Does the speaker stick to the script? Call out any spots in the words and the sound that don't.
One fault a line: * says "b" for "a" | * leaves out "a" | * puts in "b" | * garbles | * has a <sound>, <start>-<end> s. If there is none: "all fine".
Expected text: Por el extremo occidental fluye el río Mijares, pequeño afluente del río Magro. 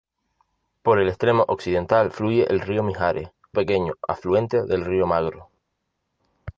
all fine